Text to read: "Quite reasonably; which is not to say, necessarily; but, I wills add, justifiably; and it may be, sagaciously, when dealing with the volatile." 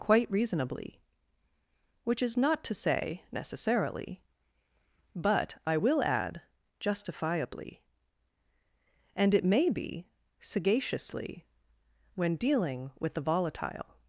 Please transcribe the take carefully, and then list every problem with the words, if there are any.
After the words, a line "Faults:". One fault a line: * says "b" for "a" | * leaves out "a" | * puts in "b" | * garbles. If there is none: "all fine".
"Quite reasonably; which is not to say, necessarily; but, I will add, justifiably; and it may be, sagaciously, when dealing with the volatile."
Faults:
* says "will" for "wills"